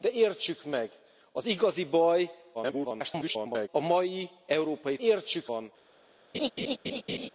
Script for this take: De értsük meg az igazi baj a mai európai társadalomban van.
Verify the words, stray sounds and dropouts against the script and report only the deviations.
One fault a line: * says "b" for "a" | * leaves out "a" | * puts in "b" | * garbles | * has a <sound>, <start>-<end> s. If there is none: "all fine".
* garbles
* says "értsük" for "társadalomban"
* has a laugh, 6.3-7.3 s